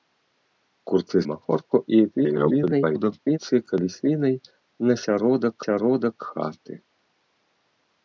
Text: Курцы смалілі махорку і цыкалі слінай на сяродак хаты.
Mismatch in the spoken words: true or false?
true